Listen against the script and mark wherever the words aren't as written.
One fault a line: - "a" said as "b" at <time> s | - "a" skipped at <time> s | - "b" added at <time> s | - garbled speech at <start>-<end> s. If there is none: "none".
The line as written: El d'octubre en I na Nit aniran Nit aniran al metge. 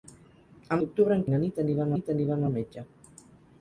none